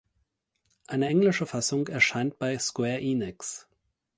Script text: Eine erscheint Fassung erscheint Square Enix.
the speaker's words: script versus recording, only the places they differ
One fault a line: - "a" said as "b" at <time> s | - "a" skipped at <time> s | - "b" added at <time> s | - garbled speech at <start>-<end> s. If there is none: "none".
- "erscheint" said as "englische" at 1.1 s
- "bei" added at 2.4 s